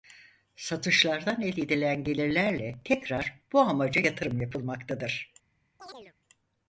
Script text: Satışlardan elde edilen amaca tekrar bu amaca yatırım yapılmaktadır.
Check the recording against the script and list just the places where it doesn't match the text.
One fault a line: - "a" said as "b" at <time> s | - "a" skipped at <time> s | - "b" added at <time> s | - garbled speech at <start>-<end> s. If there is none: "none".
- "amaca" said as "gelirlerle" at 2.0 s